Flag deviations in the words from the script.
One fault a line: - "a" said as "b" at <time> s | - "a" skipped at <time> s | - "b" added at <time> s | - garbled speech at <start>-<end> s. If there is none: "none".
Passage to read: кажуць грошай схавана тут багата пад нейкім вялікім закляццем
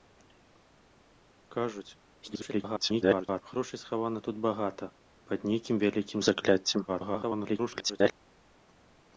- garbled speech at 2.2-3.4 s
- garbled speech at 6.9-8.1 s